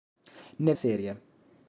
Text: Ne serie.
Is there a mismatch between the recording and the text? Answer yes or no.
no